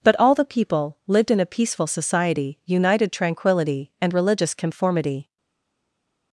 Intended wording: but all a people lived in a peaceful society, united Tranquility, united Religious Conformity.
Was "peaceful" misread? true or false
false